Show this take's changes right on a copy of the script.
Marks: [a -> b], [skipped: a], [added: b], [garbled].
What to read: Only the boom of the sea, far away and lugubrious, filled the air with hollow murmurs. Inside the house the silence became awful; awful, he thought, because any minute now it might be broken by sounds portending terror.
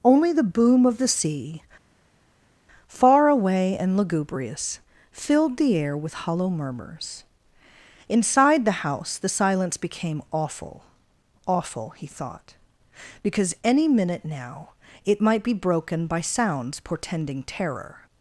Only the boom of the sea, far away and lugubrious, filled the air with hollow murmurs. Inside the house the silence became awful; awful, he thought, because any minute now it might be broken by sounds portending terror.